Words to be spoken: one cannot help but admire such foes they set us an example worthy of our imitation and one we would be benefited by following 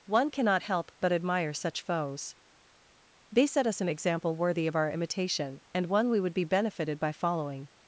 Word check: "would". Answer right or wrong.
right